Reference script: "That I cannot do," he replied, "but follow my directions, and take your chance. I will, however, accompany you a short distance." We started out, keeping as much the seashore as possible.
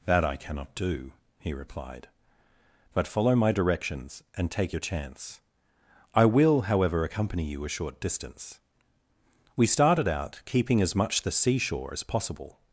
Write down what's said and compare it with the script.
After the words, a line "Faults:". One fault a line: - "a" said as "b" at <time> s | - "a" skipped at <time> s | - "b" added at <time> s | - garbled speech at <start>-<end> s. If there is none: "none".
"That I cannot do," he replied, "but follow my directions, and take your chance. I will, however, accompany you a short distance." We started out, keeping as much the seashore as possible.
Faults:
none